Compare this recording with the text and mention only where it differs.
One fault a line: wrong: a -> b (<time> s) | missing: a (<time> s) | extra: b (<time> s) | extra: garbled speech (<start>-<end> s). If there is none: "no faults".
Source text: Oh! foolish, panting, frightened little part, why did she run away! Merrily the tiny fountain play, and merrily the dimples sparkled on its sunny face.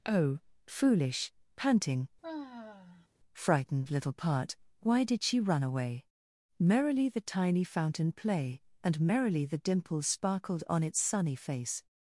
no faults